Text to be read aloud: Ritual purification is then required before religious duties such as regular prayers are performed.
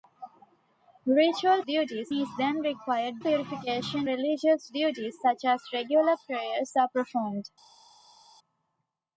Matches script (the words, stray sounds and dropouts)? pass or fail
fail